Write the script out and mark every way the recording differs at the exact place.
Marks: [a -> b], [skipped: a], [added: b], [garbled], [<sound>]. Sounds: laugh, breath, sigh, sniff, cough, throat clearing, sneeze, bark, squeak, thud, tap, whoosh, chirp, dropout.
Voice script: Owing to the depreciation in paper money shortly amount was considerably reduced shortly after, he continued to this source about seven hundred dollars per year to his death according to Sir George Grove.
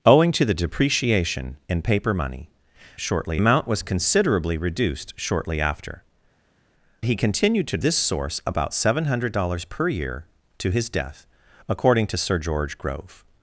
Owing to the depreciation in paper money shortly amount was considerably reduced shortly after, he continued to this source about seven hundred dollars per year to his death according to Sir George Grove.